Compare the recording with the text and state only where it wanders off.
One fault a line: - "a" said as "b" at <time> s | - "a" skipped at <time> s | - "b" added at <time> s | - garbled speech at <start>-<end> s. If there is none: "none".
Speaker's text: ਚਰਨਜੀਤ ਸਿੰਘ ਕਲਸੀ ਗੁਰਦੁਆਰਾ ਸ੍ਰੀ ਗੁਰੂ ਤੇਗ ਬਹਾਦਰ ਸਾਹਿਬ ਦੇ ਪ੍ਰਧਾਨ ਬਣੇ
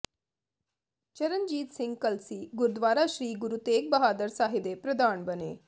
none